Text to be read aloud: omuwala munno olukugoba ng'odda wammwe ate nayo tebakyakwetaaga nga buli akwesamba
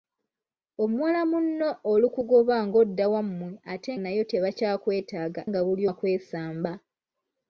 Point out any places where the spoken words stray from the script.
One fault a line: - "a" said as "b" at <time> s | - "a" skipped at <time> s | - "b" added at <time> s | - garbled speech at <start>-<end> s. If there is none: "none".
none